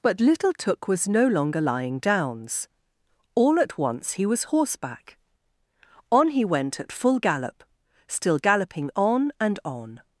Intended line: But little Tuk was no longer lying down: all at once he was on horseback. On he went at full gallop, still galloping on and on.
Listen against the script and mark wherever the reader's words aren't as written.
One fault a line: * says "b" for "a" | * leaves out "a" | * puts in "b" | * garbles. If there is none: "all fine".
* says "downs" for "down"
* leaves out "on"